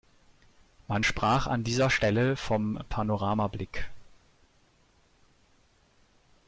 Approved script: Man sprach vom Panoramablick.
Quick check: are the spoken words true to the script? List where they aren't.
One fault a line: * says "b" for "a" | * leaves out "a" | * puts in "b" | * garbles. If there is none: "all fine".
* puts in "an dieser Stelle"